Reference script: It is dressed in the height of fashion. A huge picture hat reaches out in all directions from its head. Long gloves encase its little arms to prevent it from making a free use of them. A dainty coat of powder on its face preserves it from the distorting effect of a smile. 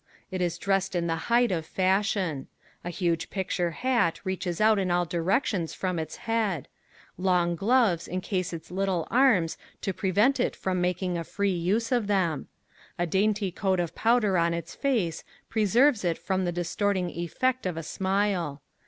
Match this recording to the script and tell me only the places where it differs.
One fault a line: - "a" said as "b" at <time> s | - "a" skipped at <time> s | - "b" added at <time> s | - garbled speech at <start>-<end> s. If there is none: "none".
none